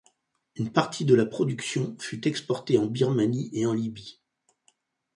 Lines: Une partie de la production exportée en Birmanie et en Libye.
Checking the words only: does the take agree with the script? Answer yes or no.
no